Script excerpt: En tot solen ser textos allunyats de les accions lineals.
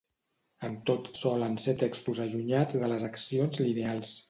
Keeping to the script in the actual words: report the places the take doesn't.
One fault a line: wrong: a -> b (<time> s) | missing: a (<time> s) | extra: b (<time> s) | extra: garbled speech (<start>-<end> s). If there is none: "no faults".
no faults